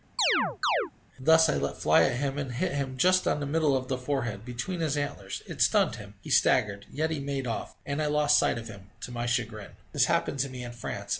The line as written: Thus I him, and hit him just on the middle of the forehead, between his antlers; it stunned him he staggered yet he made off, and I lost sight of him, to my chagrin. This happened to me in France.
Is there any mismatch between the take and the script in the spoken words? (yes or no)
yes